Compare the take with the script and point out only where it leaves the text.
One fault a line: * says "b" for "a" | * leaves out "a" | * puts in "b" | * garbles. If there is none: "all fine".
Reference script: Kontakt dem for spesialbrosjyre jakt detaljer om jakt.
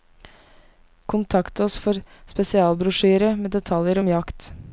* says "oss" for "dem"
* says "med" for "jakt"